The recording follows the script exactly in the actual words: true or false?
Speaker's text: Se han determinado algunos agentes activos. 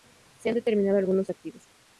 false